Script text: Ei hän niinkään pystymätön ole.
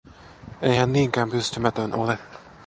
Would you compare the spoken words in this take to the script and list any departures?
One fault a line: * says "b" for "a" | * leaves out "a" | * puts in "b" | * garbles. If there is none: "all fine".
all fine